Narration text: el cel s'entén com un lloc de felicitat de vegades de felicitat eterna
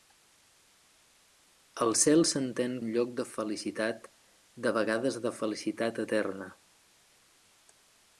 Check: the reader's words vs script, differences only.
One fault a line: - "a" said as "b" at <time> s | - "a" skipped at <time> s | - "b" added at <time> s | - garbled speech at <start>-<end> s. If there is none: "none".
- "com" skipped at 2.7 s